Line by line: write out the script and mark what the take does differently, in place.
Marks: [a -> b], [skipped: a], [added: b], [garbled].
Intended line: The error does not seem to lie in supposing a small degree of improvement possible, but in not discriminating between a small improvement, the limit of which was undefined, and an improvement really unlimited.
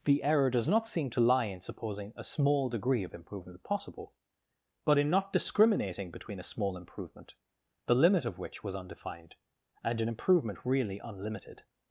The error does not seem to lie in supposing a small degree of improvement possible, but in not discriminating between a small improvement, the limit of which was undefined, and an improvement really unlimited.